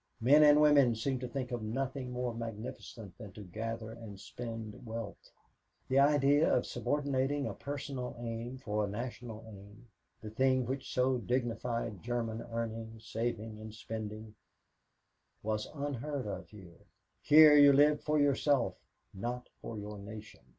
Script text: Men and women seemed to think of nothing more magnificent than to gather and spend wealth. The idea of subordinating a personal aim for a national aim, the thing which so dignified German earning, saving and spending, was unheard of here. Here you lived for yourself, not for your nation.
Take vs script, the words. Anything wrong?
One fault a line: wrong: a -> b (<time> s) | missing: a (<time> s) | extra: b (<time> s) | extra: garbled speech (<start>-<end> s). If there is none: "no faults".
no faults